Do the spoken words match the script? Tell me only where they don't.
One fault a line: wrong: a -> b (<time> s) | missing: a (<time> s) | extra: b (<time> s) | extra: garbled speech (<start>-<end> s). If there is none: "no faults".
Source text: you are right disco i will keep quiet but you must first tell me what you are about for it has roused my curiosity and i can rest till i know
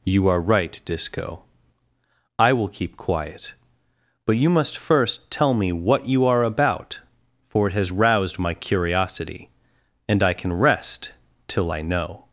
no faults